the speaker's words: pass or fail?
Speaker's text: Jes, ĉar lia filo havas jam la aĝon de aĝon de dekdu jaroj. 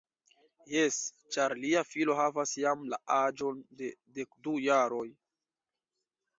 fail